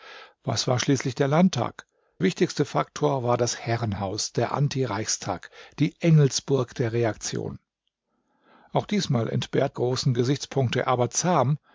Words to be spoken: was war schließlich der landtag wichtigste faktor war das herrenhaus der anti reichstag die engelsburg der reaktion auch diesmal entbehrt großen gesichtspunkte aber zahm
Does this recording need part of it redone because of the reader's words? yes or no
no